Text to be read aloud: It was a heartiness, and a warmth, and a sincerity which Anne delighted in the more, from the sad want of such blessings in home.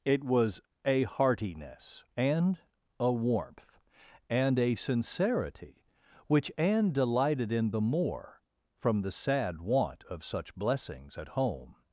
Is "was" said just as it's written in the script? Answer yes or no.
yes